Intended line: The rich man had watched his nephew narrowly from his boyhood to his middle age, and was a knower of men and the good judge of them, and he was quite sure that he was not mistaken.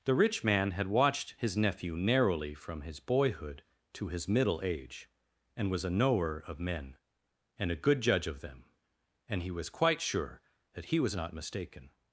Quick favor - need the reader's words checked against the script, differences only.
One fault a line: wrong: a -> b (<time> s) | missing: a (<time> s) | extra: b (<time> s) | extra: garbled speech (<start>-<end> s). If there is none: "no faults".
wrong: the -> a (7.7 s)